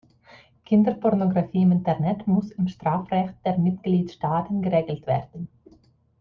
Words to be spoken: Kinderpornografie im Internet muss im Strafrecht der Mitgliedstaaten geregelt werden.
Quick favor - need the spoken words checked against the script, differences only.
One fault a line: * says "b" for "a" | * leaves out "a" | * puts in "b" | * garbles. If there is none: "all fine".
all fine